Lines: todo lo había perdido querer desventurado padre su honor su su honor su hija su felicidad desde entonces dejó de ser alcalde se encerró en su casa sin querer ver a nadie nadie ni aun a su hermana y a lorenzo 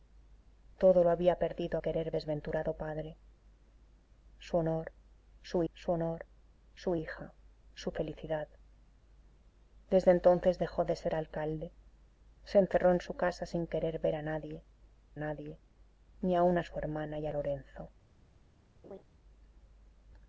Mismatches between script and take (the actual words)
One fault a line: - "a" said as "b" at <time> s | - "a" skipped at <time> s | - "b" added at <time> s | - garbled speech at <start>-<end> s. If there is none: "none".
none